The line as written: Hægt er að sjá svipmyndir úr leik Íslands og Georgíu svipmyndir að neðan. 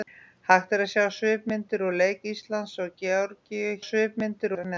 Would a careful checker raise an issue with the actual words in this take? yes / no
no